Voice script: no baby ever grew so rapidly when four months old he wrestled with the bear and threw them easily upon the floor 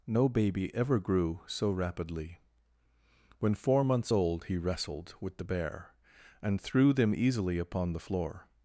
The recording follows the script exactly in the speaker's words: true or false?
true